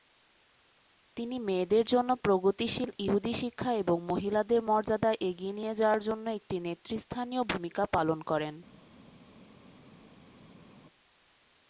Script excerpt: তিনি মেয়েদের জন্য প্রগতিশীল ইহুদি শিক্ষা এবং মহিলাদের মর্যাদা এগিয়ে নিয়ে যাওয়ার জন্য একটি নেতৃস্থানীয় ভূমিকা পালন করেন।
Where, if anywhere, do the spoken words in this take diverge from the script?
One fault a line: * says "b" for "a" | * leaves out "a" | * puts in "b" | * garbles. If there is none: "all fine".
all fine